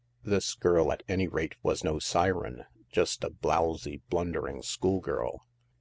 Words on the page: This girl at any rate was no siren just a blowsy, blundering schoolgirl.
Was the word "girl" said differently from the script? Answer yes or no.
no